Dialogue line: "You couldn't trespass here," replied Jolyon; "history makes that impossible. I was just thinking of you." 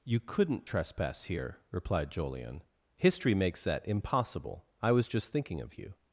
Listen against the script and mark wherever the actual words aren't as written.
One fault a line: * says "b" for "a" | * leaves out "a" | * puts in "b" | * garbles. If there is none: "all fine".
all fine